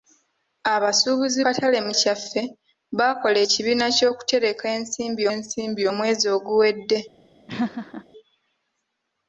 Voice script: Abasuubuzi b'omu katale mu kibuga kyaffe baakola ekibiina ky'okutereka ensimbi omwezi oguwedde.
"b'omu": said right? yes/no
no